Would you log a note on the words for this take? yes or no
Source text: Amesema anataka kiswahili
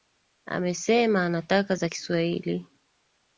yes